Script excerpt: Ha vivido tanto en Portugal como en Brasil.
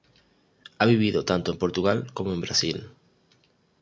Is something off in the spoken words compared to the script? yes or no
no